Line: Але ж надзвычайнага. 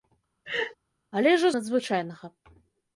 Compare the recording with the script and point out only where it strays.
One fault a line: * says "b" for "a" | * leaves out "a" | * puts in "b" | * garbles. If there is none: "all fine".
all fine